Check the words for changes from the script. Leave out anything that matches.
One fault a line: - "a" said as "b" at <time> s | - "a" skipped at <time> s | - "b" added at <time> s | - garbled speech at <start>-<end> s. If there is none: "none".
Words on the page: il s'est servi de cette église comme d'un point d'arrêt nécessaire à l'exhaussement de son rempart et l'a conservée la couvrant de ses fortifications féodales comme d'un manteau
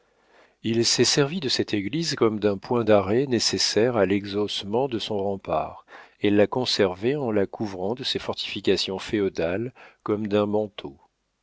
- "en" added at 7.2 s